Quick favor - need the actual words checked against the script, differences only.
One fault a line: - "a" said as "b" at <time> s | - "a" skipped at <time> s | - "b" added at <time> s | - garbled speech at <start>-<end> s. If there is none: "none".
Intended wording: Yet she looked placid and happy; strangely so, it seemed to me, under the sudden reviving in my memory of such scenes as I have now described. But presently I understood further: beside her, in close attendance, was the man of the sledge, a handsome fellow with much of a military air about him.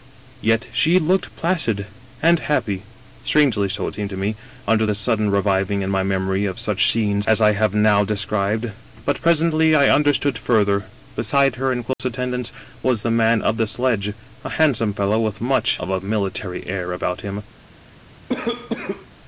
none